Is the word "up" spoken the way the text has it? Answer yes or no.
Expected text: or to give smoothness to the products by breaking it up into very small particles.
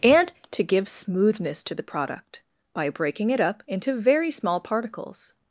yes